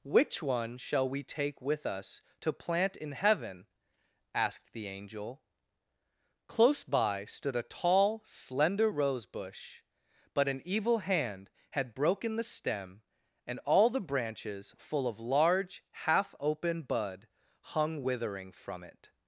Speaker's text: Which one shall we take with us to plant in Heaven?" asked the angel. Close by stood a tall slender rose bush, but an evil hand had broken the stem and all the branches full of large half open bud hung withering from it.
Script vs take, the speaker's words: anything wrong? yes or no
no